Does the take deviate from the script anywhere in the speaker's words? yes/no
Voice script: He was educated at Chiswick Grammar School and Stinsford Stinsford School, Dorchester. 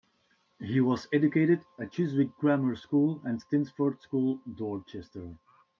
yes